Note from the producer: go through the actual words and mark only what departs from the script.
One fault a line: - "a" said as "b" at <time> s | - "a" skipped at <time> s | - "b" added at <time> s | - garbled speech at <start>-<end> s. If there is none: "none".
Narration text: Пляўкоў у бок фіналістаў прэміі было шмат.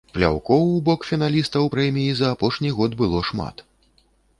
- "за апошні год" added at 2.2 s